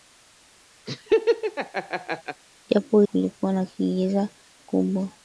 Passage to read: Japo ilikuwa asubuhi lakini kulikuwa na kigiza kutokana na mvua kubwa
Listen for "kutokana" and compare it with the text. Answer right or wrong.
wrong